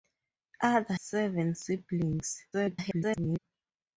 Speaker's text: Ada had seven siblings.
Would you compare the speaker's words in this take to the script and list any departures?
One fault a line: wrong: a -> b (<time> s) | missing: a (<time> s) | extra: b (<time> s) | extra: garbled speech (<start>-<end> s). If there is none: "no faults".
missing: had (0.9 s)
extra: garbled speech (2.5-3.4 s)